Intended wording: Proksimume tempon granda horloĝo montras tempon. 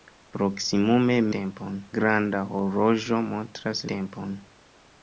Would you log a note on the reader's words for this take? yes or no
no